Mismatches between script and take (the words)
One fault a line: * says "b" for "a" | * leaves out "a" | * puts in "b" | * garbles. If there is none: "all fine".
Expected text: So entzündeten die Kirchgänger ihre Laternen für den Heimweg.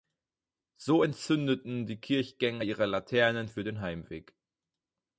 all fine